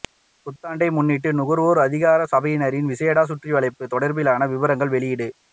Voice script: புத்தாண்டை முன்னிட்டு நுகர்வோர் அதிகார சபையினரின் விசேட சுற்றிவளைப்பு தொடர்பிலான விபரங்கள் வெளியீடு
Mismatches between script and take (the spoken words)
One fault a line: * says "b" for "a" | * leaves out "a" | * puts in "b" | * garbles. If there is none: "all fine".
all fine